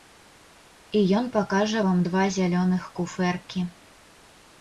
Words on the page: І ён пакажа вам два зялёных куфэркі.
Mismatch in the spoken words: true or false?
false